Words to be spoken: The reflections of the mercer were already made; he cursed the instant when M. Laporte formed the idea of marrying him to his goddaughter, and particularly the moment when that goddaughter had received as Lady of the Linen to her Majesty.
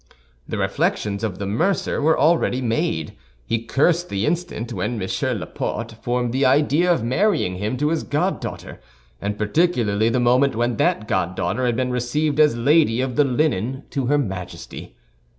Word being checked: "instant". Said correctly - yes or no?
yes